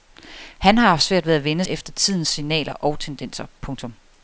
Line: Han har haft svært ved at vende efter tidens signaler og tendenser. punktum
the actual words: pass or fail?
pass